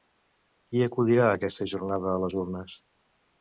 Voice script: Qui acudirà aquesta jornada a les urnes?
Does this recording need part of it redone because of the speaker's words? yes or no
no